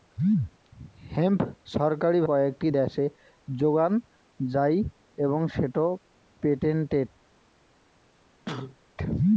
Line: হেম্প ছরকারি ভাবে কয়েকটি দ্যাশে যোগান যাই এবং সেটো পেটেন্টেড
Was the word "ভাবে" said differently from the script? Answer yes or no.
yes